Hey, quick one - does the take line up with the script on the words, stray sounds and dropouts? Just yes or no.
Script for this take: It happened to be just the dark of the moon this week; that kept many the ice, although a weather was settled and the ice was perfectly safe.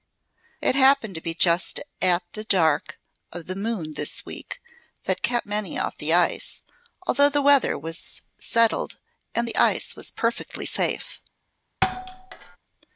no